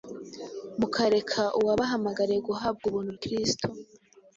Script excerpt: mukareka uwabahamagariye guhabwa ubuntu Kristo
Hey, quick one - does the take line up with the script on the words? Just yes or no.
yes